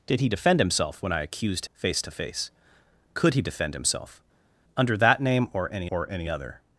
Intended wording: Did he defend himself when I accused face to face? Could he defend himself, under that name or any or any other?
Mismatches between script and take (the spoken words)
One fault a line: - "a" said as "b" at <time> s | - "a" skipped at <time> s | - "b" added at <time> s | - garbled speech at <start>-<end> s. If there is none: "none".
none